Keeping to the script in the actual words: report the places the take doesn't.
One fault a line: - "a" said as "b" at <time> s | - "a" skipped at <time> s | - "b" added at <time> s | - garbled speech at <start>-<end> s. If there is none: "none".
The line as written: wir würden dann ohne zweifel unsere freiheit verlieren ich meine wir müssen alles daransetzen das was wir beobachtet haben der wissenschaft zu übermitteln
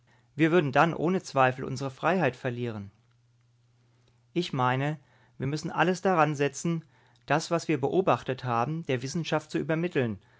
none